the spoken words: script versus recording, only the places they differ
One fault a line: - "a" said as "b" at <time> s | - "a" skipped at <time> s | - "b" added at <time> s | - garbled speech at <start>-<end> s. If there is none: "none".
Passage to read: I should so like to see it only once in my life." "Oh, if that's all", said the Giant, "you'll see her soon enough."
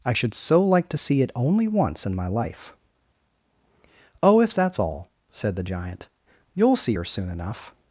none